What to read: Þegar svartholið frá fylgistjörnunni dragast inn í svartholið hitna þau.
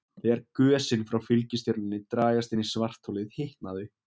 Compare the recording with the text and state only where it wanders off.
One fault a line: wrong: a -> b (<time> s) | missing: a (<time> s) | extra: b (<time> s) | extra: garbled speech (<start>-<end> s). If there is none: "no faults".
wrong: svartholið -> gösin (0.6 s)